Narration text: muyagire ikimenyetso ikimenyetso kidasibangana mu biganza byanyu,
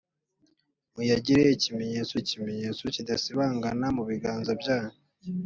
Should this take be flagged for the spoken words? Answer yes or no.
no